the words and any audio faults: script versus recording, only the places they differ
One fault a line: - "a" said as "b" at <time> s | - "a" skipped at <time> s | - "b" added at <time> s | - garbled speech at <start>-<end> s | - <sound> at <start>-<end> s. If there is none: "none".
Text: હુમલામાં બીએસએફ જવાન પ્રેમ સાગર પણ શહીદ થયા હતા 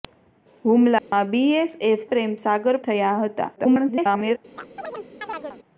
- dropout at 1.0-1.1 s
- "જવાન" skipped at 2.1 s
- "પણ શહીદ" skipped at 2.8 s
- garbled speech at 3.6-4.4 s
- chirp at 4.6-5.6 s